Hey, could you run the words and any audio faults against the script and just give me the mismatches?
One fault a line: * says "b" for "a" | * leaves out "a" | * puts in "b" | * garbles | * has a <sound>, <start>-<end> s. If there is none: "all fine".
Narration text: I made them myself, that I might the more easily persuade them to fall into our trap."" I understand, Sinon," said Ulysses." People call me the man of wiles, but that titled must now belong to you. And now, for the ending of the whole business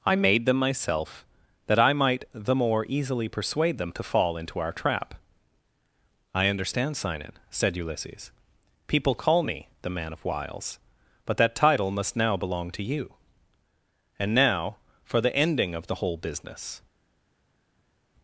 * says "title" for "titled"